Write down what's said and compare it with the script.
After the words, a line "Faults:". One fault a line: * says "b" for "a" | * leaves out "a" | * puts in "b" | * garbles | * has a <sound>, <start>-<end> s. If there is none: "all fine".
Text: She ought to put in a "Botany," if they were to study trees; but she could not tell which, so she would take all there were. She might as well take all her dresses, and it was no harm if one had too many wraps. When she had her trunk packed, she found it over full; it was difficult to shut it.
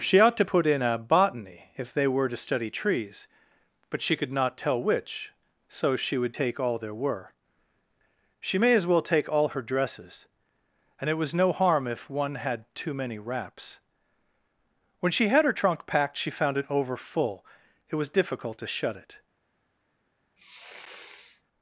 She ought to put in a "Botany," if they were to study trees; but she could not tell which, so she would take all there were. She may as well take all her dresses, and it was no harm if one had too many wraps. When she had her trunk packed, she found it over full; it was difficult to shut it.
Faults:
* says "may" for "might"
* has a sniff, 20.4-21.4 s